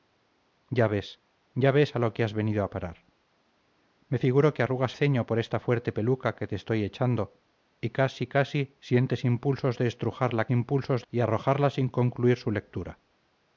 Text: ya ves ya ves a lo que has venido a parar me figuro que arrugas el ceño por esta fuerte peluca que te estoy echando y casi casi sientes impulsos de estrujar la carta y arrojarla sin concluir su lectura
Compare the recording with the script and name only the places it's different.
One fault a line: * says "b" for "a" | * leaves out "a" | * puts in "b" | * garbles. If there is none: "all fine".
* leaves out "el"
* says "impulsos" for "carta"